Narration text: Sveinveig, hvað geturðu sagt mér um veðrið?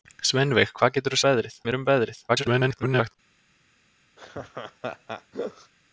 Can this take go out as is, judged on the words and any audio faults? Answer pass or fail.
fail